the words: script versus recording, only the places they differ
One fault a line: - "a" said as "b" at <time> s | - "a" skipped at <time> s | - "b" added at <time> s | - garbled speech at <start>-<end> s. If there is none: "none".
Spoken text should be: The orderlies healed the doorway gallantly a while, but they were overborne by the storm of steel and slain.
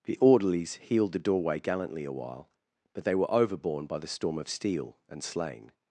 none